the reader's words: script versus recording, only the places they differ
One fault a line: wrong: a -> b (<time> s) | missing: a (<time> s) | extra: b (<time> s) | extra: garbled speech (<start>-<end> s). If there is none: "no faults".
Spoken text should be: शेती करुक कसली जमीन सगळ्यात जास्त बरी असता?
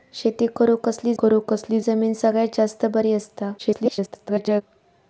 extra: करुक कसली (1.2 s)
extra: garbled speech (3.6-4.6 s)